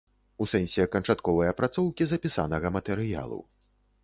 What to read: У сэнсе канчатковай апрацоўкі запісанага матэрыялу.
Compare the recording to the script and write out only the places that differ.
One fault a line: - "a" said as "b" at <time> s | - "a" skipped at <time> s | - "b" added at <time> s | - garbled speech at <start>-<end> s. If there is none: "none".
none